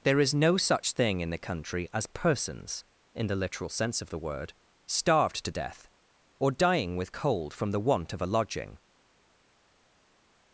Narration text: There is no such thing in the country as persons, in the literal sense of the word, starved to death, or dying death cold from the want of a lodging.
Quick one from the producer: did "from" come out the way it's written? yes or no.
yes